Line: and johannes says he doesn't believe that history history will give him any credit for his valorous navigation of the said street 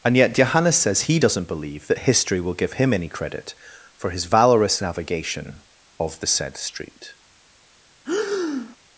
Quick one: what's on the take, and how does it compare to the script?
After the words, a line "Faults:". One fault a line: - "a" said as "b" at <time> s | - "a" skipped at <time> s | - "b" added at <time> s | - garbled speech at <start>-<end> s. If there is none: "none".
and yet johannes says he doesn't believe that history will give him any credit for his valorous navigation of the said street
Faults:
- "yet" added at 0.2 s
- "history" skipped at 2.4 s